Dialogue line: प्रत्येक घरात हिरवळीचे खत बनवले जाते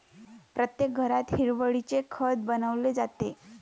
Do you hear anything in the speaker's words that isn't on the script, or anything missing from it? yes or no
no